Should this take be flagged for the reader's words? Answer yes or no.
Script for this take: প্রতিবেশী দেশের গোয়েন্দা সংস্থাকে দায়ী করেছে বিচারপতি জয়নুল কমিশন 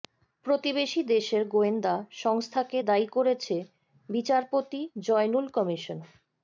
no